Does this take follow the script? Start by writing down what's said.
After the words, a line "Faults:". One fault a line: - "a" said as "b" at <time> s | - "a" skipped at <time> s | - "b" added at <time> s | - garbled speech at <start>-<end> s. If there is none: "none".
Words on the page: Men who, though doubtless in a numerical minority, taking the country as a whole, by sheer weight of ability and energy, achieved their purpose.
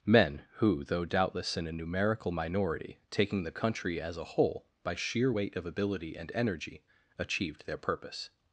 Men who, though doubtless in a numerical minority, taking the country as a whole, by sheer weight of ability and energy, achieved their purpose.
Faults:
none